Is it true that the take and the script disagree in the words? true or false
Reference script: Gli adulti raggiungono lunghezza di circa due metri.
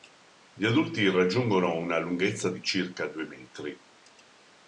true